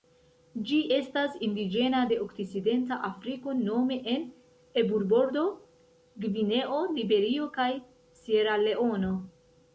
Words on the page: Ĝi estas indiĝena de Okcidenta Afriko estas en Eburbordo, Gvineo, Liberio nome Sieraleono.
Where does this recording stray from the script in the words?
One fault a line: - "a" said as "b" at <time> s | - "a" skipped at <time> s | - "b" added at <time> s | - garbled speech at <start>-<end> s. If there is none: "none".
- "estas" said as "nome" at 3.6 s
- "nome" said as "kaj" at 7.6 s